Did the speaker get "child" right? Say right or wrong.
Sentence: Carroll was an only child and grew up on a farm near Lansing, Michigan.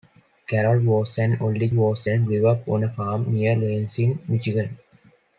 wrong